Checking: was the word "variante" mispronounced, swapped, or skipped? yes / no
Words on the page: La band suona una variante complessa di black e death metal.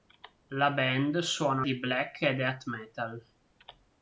yes